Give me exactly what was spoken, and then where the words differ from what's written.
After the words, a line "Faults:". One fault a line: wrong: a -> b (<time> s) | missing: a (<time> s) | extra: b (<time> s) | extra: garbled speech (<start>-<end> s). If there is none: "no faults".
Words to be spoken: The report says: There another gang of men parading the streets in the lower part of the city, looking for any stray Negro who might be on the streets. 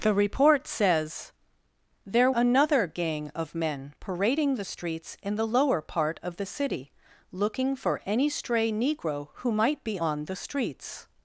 The report says: There another gang of men parading the streets in the lower part of the city, looking for any stray Negro who might be on the streets.
Faults:
no faults